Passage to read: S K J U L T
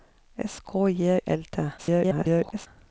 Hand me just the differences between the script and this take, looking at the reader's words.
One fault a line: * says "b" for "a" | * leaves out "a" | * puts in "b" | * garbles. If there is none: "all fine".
* leaves out "U"
* garbles